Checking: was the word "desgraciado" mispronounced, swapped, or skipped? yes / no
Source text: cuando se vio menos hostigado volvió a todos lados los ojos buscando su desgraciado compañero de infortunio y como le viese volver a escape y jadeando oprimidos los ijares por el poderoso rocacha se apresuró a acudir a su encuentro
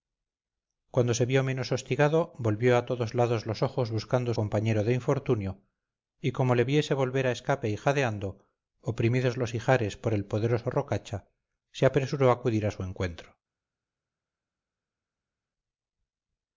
yes